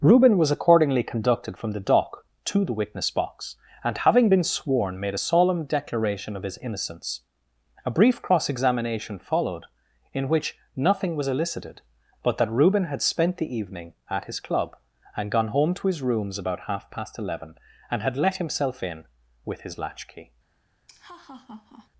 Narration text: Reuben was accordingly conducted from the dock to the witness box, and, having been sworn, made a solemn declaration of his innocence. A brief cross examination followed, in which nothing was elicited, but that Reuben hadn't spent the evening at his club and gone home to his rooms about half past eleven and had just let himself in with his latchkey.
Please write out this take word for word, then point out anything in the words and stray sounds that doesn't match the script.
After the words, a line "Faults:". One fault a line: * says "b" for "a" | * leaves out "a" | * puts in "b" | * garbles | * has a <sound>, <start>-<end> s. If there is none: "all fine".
Reuben was accordingly conducted from the dock to the witness box, and, having been sworn, made a solemn declaration of his innocence. A brief cross examination followed, in which nothing was elicited, but that Reuben had spent the evening at his club and gone home to his rooms about half past eleven and had let himself in with his latchkey.
Faults:
* says "had" for "hadn't"
* leaves out "just"
* has a laugh, 20.9-21.9 s